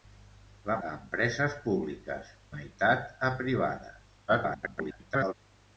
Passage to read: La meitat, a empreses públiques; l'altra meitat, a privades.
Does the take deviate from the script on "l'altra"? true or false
true